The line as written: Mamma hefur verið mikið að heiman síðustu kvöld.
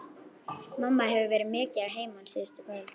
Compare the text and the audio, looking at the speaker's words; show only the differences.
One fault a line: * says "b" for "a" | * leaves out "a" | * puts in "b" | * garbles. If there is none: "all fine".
all fine